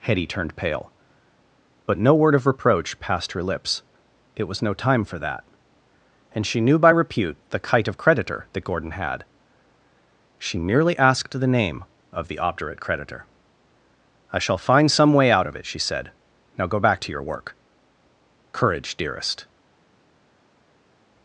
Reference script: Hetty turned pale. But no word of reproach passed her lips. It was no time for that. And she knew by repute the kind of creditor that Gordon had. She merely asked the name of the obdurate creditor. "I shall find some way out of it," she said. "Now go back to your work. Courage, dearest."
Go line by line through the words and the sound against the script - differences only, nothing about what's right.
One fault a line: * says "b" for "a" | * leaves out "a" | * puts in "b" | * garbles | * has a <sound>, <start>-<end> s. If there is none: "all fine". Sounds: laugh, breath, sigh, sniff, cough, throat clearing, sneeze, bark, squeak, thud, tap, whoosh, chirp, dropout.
* says "kite" for "kind"